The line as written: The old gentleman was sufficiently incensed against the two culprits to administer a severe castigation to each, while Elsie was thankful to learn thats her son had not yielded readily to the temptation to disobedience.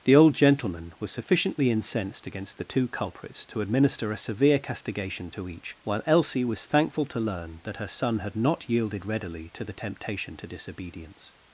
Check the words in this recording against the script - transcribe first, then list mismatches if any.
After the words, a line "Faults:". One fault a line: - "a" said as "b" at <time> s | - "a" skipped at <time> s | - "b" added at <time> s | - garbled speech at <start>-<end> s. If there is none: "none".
The old gentleman was sufficiently incensed against the two culprits to administer a severe castigation to each, while Elsie was thankful to learn that her son had not yielded readily to the temptation to disobedience.
Faults:
- "thats" said as "that" at 7.6 s